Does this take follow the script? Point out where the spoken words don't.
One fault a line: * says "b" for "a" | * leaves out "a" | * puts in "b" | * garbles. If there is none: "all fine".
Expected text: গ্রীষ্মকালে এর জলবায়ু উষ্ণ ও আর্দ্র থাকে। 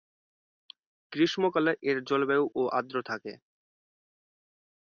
* leaves out "উষ্ণ"